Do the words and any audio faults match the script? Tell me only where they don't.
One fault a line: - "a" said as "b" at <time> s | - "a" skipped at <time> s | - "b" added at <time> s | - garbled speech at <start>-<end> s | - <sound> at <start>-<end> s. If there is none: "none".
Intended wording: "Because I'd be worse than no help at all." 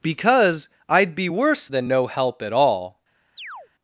- chirp at 3.4-3.7 s